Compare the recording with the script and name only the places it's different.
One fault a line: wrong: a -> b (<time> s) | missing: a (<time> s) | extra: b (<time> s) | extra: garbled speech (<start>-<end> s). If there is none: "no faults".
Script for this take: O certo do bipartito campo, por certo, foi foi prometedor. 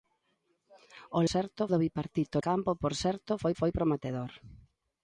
no faults